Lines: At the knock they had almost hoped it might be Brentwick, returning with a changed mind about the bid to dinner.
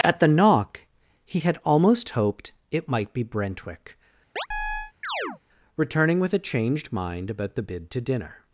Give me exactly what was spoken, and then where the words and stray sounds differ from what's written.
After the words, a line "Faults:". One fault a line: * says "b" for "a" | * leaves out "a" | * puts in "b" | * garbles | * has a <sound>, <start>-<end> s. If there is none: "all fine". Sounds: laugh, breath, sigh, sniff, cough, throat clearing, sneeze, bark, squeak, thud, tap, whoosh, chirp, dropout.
At the knock he had almost hoped it might be Brentwick, returning with a changed mind about the bid to dinner.
Faults:
* says "he" for "they"
* has a chirp, 4.4-5.4 s